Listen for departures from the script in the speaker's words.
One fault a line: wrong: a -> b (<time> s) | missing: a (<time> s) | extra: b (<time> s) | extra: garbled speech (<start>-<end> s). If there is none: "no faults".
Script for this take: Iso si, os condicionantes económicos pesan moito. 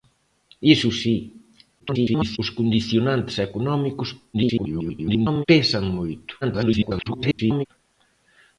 extra: garbled speech (1.8-2.4 s)
extra: garbled speech (4.3-5.4 s)
extra: garbled speech (6.4-7.7 s)